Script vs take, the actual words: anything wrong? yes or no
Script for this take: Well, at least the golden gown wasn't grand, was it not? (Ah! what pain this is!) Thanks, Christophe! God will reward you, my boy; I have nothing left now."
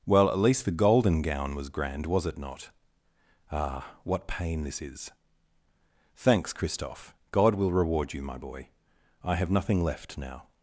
yes